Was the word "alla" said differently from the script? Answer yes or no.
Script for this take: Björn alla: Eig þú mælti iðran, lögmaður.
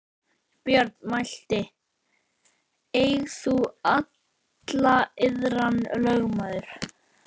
yes